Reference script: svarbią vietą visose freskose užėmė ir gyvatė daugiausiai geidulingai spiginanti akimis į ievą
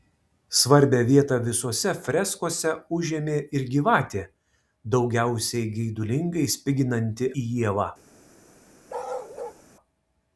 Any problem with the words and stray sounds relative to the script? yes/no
yes